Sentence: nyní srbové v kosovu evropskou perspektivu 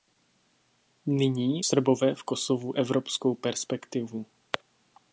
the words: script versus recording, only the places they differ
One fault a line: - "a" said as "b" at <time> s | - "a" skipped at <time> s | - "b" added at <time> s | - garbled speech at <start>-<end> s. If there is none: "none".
none